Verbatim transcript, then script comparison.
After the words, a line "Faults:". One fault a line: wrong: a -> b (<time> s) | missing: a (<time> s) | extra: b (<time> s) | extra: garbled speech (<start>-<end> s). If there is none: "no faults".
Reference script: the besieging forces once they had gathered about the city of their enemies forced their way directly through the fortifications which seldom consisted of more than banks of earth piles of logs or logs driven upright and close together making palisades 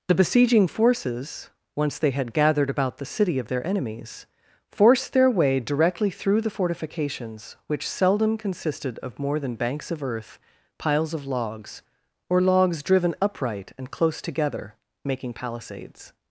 the besieging forces once they had gathered about the city of their enemies forced their way directly through the fortifications which seldom consisted of more than banks of earth piles of logs or logs driven upright and close together making palisades
Faults:
no faults